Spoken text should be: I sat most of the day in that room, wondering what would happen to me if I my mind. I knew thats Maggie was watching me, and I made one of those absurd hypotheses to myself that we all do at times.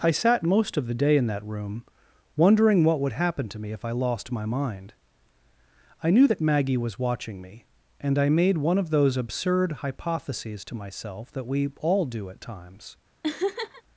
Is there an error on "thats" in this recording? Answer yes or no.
yes